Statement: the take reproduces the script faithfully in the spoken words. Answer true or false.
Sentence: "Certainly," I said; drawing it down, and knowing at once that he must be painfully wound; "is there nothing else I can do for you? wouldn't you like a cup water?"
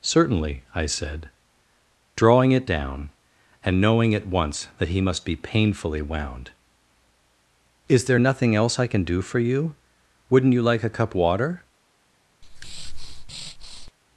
true